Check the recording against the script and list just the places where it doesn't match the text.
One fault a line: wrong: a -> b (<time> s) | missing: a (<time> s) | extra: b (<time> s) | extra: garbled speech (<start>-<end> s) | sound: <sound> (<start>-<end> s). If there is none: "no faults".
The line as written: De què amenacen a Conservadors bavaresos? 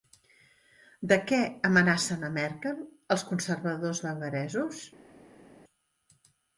extra: Merkel els (2.4 s)